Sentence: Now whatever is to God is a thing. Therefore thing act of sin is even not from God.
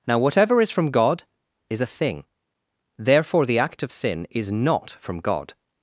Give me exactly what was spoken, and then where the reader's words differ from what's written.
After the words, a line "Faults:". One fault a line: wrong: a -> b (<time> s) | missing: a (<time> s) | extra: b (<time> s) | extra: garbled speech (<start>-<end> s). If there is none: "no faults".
Now whatever is from God is a thing. Therefore the act of sin is not from God.
Faults:
wrong: to -> from (0.7 s)
wrong: thing -> the (3.5 s)
missing: even (4.5 s)